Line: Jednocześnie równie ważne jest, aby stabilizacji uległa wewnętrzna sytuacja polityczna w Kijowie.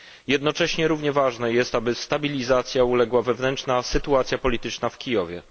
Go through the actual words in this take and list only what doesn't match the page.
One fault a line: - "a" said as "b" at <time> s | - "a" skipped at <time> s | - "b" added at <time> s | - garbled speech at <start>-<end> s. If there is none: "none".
none